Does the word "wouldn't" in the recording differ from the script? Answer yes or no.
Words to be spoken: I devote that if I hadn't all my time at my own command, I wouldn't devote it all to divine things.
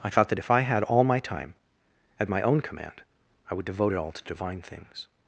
yes